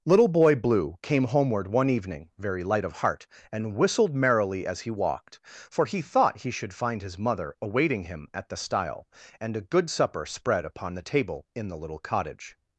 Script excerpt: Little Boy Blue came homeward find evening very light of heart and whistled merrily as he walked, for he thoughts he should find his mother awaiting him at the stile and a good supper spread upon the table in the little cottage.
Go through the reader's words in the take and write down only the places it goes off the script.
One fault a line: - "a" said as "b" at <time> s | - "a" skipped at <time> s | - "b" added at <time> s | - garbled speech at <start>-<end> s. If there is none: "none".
- "find" said as "one" at 1.7 s
- "thoughts" said as "thought" at 6.0 s